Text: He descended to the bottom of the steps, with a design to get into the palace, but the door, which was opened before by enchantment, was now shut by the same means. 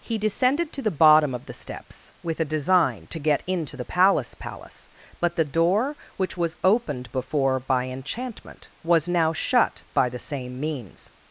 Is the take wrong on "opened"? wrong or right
right